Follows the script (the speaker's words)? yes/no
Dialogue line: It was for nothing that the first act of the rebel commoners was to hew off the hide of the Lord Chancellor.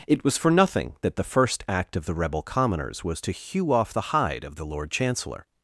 yes